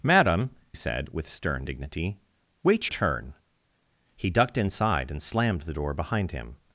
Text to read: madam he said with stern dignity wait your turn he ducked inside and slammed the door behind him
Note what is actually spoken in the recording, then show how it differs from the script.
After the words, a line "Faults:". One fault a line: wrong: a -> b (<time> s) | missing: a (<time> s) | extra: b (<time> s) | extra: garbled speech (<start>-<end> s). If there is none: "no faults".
madam said with stern dignity wait turn he ducked inside and slammed the door behind him
Faults:
missing: he (0.5 s)
missing: your (2.9 s)